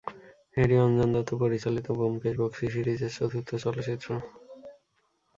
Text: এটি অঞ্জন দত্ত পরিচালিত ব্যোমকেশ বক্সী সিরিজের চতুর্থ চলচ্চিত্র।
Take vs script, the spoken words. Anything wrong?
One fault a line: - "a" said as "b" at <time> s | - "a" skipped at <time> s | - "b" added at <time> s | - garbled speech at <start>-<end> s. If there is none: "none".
none